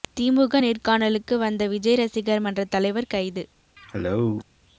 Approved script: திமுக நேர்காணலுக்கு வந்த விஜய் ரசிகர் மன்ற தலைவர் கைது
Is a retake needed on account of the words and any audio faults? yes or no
yes